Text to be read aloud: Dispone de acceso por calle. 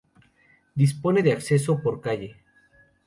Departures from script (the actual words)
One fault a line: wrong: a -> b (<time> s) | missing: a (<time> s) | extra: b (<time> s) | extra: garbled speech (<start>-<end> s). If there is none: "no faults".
no faults